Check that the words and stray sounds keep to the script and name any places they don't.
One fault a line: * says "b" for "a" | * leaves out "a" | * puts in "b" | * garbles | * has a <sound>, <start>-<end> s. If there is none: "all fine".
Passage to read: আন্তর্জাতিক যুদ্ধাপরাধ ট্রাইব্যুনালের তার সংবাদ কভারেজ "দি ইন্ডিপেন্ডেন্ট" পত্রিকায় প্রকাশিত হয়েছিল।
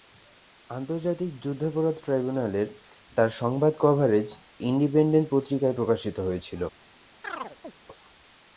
* leaves out "দি"
* has a chirp, 7.2-7.7 s